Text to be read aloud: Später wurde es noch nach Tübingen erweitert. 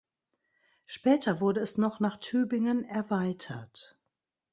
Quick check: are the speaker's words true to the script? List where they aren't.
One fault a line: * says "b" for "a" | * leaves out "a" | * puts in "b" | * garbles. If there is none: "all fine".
all fine